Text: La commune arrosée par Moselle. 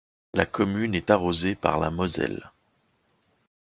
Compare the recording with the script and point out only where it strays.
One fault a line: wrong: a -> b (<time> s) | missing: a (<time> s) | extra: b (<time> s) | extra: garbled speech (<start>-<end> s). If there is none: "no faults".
extra: est (0.9 s)
extra: la (1.8 s)